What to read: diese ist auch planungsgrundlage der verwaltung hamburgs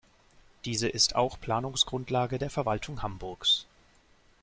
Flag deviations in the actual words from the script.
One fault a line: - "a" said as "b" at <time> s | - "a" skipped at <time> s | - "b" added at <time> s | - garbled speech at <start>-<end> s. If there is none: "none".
none